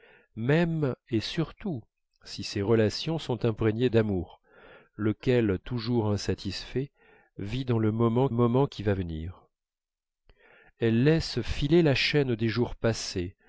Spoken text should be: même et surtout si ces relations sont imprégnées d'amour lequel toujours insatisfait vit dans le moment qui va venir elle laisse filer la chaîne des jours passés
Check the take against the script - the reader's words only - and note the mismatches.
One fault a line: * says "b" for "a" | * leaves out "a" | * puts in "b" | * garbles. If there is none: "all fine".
* puts in "moment"